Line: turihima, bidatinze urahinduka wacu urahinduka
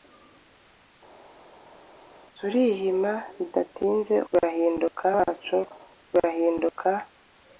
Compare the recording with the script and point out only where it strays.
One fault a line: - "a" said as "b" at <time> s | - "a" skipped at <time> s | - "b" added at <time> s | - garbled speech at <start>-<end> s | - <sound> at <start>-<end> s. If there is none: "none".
none